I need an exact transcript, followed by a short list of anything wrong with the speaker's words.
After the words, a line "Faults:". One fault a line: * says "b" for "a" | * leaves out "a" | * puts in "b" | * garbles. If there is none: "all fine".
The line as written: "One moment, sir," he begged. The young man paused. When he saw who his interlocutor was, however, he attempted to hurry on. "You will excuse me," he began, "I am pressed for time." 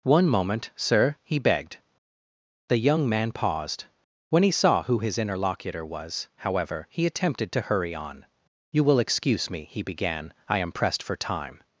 "One moment, sir," he begged. The young man paused. When he saw who his interlocutor was, however, he attempted to hurry on. "You will excuse me," he began, "I am pressed for time."
Faults:
all fine